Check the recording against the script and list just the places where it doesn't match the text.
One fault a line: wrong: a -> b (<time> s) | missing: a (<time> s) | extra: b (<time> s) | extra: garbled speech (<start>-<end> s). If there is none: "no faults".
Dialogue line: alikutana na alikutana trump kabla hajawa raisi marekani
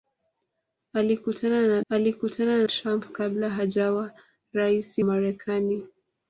no faults